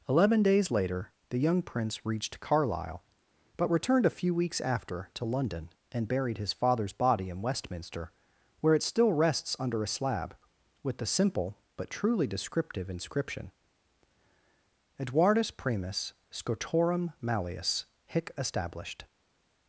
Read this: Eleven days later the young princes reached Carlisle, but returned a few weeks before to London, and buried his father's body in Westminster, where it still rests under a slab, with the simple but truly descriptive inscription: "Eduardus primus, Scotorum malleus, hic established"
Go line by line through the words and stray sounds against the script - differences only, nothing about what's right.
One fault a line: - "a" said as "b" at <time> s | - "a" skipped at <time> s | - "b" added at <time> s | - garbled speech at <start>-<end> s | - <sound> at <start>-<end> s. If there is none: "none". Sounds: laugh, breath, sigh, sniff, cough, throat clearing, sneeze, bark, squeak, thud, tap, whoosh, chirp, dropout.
- "princes" said as "prince" at 1.6 s
- "before" said as "after" at 4.6 s